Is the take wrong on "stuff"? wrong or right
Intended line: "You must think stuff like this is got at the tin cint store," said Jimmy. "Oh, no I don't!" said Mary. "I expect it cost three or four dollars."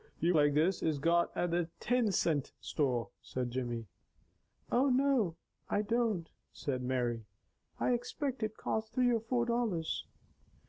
wrong